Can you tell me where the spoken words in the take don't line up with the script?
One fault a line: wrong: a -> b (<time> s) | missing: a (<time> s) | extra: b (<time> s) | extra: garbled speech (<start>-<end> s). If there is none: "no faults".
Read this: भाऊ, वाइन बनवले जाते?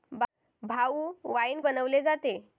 no faults